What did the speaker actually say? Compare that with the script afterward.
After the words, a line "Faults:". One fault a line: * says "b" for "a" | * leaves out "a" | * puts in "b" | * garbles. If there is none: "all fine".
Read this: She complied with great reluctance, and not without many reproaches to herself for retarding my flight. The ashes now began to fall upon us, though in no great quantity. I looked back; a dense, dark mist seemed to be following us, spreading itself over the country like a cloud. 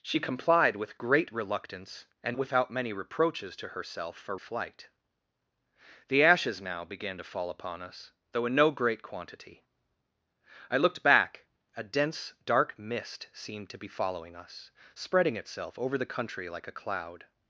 She complied with great reluctance, and without many reproaches to herself for flight. The ashes now began to fall upon us, though in no great quantity. I looked back; a dense, dark mist seemed to be following us, spreading itself over the country like a cloud.
Faults:
* leaves out "not"
* leaves out "retarding my"